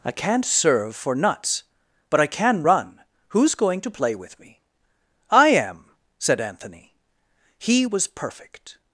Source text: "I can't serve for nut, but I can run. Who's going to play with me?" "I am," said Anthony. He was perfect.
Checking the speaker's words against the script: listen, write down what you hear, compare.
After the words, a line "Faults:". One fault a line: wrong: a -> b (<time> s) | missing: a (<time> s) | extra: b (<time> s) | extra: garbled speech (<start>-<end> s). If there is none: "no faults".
"I can't serve for nuts, but I can run. Who's going to play with me?" "I am," said Anthony. He was perfect.
Faults:
wrong: nut -> nuts (1.1 s)